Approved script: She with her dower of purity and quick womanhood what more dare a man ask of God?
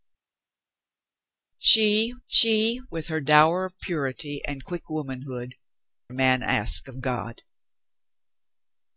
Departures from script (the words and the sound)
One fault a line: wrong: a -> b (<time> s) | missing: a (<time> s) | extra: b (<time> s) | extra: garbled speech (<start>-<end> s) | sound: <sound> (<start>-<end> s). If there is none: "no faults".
extra: she (2.3 s)
missing: what more dare (5.5 s)